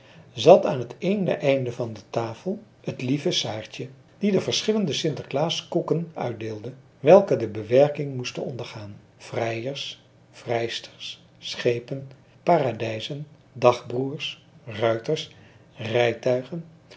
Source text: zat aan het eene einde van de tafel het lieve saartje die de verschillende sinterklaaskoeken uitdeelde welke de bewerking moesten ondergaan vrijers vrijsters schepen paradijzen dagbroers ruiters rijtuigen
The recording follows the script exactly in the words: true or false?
true